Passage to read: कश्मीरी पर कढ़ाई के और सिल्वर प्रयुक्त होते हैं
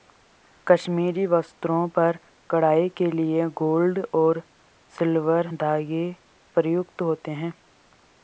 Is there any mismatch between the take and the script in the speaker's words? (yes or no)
yes